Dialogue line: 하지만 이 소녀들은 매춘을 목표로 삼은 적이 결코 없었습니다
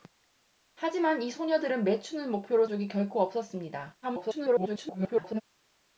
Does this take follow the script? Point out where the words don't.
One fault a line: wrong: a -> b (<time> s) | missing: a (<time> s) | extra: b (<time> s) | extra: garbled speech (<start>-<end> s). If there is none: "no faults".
missing: 삼은 (2.6 s)
extra: garbled speech (4.0-5.4 s)